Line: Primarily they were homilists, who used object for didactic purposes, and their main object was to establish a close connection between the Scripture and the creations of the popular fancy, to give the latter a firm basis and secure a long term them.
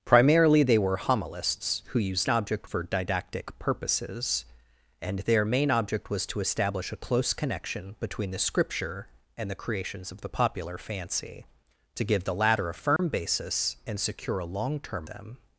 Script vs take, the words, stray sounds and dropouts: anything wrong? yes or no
yes